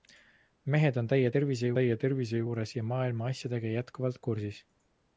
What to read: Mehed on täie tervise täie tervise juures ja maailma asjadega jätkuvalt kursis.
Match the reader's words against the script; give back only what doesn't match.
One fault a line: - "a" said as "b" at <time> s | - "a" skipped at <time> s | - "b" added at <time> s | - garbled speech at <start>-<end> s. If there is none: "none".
none